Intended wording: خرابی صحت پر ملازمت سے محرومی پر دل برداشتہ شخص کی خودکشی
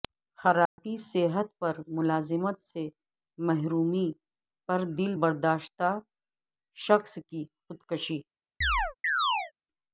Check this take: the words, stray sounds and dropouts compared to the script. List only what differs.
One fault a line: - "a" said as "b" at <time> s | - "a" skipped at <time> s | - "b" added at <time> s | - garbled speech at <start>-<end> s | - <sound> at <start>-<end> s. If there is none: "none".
- dropout at 0.7-0.8 s
- chirp at 8.6-9.5 s